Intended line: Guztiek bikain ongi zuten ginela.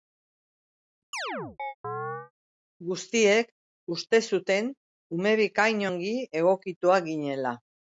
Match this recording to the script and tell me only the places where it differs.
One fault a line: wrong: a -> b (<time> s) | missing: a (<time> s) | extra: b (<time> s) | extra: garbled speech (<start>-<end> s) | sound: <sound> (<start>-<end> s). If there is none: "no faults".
sound: chirp (1.1-2.3 s)
extra: uste zuten ume (4.0 s)
wrong: zuten -> egokituak (6.4 s)